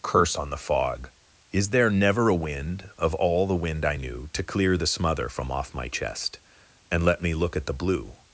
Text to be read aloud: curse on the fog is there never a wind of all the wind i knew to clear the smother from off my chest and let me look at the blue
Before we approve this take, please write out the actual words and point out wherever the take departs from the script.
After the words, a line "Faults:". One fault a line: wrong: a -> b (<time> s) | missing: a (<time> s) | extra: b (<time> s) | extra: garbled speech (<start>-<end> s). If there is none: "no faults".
curse on the fog is there never a wind of all the wind i knew to clear the smother from off my chest and let me look at the blue
Faults:
no faults